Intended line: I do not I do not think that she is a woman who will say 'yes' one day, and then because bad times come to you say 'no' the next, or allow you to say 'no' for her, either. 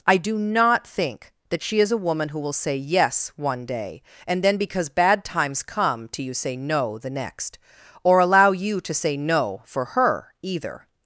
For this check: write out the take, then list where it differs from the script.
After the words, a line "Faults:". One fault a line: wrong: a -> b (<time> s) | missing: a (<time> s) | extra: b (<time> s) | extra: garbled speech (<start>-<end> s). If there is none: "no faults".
I do not think that she is a woman who will say 'yes' one day, and then because bad times come to you say 'no' the next, or allow you to say 'no' for her, either.
Faults:
missing: I do not (0.9 s)